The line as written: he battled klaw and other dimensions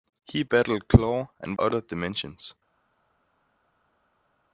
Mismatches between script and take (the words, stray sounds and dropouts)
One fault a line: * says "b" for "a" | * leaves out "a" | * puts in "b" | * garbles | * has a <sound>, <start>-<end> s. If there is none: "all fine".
all fine